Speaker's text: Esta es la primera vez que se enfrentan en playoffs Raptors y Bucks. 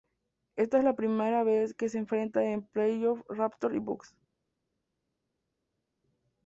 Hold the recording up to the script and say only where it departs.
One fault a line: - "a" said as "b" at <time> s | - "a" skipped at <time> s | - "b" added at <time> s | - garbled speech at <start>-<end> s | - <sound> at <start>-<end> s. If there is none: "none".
none